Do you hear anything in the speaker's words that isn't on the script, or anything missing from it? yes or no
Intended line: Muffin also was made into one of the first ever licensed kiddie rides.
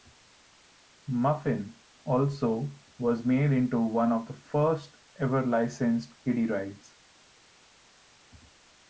no